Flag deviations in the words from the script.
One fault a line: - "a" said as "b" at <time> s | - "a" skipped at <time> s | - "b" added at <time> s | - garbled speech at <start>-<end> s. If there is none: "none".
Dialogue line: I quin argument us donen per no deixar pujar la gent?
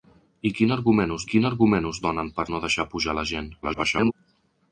- "quin argument us" added at 1.3 s
- garbled speech at 3.6-4.1 s